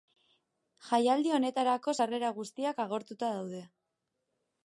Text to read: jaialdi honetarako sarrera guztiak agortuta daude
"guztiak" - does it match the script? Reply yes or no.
yes